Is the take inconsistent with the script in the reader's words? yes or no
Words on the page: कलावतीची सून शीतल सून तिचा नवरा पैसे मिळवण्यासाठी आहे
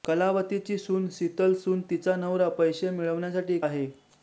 no